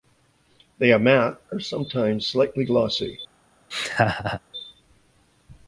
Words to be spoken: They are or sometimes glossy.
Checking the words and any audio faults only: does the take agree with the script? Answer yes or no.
no